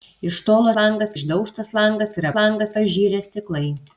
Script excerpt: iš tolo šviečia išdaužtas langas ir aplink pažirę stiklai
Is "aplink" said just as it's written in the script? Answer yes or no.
no